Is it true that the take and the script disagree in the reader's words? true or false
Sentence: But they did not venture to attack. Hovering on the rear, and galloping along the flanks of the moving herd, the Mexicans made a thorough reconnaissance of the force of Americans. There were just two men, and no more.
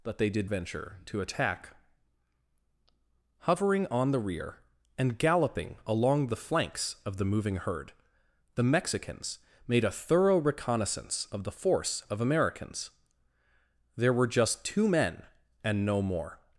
true